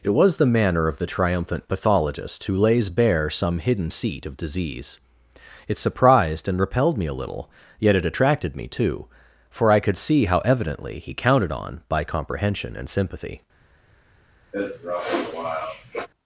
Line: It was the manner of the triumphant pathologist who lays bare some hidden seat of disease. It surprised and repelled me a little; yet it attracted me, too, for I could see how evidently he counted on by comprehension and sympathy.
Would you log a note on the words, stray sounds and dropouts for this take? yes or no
yes